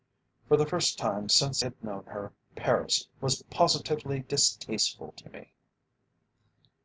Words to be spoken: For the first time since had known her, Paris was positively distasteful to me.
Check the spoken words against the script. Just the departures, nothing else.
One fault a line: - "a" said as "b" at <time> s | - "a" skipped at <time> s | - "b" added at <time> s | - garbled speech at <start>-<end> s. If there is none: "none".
none